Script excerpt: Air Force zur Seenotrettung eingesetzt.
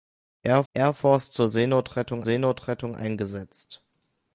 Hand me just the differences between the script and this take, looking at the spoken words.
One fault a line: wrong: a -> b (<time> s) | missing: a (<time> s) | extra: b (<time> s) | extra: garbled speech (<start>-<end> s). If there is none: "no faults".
extra: air (0.7 s)
extra: Seenotrettung (2.2 s)